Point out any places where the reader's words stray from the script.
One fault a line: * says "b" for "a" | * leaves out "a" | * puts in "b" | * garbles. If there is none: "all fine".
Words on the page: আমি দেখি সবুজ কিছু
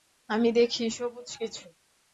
all fine